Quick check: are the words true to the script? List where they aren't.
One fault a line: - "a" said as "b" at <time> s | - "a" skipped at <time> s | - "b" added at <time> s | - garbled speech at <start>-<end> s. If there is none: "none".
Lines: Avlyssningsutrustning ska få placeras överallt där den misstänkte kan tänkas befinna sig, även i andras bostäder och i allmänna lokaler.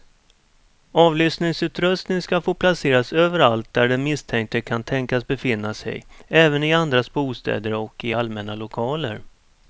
none